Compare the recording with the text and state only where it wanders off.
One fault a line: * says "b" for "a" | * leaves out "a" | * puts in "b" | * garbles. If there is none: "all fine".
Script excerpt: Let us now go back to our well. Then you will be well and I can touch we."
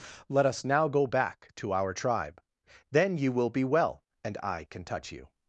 * says "tribe" for "well"
* says "you" for "we"